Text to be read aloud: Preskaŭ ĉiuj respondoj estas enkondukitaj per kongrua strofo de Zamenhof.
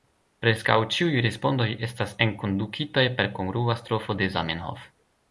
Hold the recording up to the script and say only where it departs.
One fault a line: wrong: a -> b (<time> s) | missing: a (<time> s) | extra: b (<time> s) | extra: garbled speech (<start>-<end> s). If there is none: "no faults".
no faults